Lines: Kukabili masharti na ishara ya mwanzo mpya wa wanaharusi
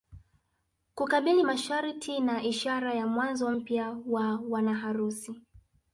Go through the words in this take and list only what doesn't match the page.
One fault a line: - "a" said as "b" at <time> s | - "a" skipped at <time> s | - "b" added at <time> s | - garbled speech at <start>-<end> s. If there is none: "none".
none